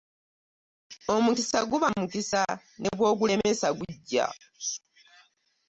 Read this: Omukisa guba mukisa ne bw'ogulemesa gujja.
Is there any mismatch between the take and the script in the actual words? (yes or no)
no